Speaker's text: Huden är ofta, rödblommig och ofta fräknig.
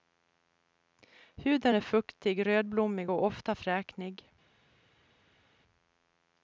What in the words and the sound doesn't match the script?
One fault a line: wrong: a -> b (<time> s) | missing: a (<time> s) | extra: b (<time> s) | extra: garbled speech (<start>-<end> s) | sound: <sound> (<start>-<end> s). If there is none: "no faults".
wrong: ofta -> fuktig (1.8 s)